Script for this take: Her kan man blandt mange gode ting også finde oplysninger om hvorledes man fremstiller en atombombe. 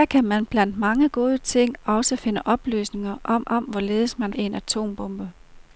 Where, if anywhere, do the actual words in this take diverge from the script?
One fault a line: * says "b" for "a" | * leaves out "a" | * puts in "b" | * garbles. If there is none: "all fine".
* puts in "om"
* leaves out "fremstiller"